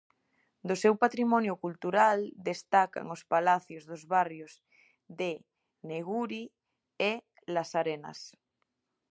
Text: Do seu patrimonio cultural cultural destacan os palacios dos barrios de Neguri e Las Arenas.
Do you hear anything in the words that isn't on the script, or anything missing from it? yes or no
yes